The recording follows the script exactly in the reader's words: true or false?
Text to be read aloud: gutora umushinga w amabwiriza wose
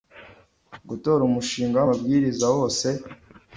true